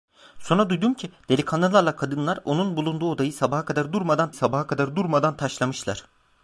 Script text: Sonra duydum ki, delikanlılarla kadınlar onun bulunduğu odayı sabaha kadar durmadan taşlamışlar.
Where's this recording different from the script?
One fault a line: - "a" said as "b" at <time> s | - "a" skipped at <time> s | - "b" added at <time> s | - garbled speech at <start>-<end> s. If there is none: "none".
- "sabaha kadar durmadan" added at 4.3 s